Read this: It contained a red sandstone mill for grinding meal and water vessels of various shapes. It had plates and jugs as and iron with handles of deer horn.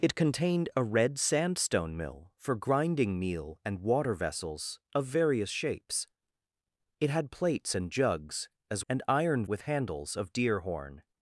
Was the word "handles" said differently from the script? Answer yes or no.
no